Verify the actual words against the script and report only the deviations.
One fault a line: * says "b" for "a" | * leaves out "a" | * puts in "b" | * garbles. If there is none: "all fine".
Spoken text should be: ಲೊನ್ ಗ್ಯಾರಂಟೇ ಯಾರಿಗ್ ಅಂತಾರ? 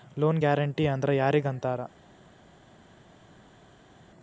* puts in "ಅಂದ್ರ್"